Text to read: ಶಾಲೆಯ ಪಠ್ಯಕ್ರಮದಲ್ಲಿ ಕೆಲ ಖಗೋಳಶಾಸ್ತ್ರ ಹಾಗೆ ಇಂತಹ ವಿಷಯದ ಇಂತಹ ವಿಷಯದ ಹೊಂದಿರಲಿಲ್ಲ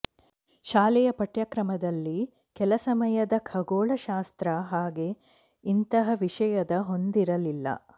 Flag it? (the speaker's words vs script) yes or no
yes